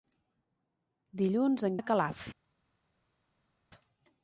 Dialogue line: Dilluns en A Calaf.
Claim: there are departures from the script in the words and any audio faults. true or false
false